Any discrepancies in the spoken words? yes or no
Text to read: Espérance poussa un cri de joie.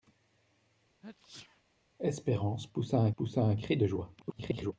yes